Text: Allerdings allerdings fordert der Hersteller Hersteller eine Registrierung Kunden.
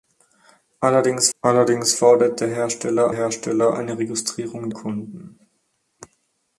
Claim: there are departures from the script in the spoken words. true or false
false